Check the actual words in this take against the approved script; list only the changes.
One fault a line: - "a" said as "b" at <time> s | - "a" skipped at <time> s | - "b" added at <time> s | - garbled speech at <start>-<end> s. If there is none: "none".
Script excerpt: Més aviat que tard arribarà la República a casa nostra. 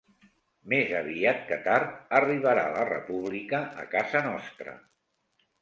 none